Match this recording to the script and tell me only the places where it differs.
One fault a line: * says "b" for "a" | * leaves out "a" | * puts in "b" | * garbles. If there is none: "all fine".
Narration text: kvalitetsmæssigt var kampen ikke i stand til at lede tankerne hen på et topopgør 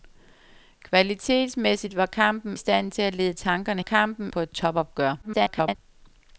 * leaves out "ikke"
* says "kampen" for "hen"
* garbles